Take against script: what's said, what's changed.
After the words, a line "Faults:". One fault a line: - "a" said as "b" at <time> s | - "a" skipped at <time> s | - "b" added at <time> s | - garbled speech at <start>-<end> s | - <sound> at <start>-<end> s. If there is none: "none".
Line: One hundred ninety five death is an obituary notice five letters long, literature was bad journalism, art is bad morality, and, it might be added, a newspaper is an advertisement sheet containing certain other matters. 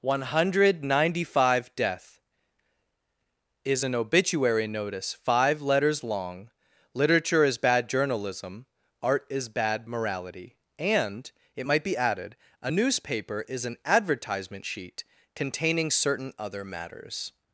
One hundred ninety five death is an obituary notice five letters long, literature is bad journalism, art is bad morality, and, it might be added, a newspaper is an advertisement sheet containing certain other matters.
Faults:
- "was" said as "is" at 7.4 s